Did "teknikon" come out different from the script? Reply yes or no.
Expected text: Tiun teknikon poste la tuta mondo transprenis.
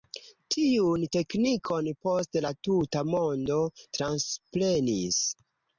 no